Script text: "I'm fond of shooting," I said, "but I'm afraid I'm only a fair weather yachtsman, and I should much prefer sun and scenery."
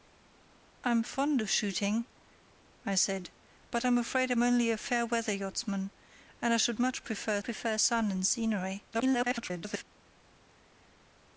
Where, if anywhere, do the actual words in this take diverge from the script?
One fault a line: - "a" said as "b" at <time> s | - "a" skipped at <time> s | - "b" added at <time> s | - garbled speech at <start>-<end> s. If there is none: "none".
- "prefer" added at 7.4 s
- garbled speech at 8.9-9.8 s